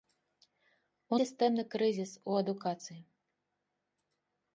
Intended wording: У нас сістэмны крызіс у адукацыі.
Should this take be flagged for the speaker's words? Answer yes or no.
yes